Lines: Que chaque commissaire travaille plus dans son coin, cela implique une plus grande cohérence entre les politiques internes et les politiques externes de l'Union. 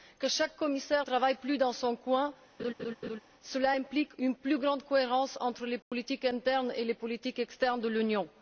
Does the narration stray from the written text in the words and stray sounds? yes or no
yes